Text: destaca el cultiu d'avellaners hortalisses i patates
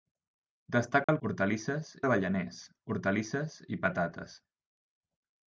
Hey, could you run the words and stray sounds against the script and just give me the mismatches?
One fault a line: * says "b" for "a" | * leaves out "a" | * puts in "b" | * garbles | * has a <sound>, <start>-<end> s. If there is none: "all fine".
* has a dropout, 1.0-1.1 s
* says "hortalisses" for "cultiu"